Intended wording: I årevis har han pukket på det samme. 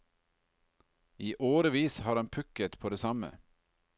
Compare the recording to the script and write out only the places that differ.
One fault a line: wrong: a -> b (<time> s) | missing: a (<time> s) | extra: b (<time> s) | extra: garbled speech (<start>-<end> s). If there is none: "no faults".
no faults